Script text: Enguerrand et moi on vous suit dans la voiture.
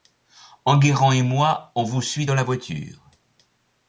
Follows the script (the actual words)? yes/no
yes